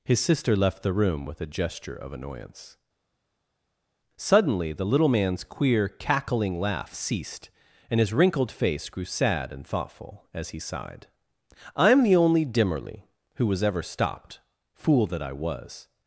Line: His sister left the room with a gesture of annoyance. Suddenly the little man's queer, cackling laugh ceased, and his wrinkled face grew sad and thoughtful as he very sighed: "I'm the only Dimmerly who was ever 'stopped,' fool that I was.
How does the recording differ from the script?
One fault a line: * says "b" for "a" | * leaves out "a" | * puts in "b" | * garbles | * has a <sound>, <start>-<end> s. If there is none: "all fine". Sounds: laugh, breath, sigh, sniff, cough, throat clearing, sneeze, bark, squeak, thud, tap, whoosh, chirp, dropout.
* leaves out "very"